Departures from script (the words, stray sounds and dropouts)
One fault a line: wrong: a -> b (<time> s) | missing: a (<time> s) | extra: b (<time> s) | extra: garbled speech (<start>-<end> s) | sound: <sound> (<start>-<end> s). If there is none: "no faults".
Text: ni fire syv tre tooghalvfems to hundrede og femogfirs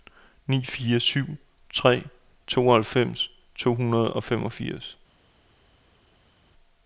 no faults